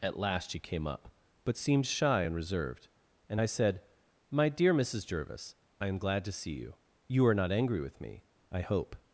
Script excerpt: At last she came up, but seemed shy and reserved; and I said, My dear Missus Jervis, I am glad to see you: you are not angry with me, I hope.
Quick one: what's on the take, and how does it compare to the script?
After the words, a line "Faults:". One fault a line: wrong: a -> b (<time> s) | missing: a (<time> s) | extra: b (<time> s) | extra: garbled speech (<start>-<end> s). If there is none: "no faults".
At last she came up, but seemed shy and reserved; and I said, My dear Missus Jervis, I am glad to see you: you are not angry with me, I hope.
Faults:
no faults